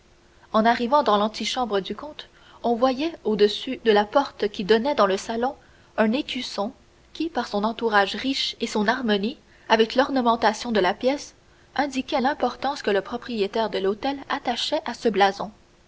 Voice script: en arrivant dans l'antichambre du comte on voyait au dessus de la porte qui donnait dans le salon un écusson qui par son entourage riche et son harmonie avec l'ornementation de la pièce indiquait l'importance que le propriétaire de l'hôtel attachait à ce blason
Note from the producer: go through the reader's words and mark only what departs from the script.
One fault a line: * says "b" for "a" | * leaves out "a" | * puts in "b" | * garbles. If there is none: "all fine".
all fine